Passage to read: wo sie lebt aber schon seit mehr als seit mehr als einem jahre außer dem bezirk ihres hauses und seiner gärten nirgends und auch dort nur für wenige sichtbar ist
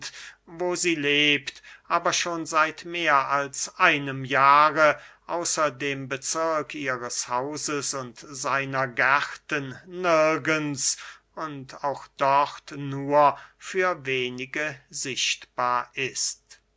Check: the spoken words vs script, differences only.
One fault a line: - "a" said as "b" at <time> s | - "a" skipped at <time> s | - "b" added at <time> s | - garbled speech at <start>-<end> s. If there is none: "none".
- "seit mehr als" skipped at 3.8 s